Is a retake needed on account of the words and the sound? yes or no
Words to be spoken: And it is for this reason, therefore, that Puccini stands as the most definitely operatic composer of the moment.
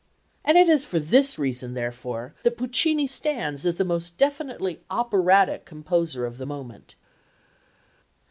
no